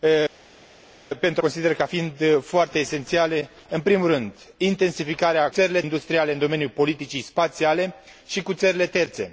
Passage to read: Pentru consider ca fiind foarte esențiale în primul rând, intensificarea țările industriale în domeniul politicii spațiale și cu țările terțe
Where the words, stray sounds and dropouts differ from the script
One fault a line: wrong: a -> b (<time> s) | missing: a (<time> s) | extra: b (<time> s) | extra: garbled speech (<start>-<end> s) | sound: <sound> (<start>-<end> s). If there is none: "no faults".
no faults